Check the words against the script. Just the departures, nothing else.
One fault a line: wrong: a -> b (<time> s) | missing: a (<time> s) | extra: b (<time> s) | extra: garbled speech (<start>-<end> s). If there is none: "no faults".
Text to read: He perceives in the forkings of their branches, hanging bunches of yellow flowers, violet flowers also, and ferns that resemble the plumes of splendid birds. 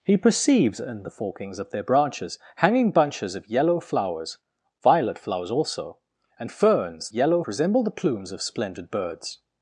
wrong: that -> yellow (7.1 s)